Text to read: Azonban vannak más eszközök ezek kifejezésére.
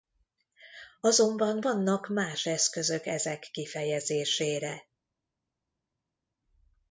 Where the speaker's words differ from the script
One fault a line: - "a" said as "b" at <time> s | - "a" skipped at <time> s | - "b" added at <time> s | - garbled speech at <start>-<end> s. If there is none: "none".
none